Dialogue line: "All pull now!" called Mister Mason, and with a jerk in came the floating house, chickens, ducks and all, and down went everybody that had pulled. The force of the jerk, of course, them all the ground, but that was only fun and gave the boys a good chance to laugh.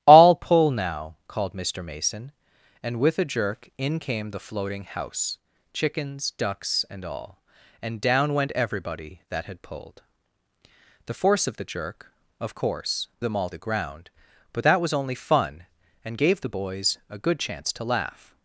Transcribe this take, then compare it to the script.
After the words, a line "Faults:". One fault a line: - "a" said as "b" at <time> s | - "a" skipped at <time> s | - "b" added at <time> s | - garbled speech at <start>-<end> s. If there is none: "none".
"All pull now!" called Mister Mason, and with a jerk in came the floating house, chickens, ducks and all, and down went everybody that had pulled. The force of the jerk, of course, them all the ground, but that was only fun and gave the boys a good chance to laugh.
Faults:
none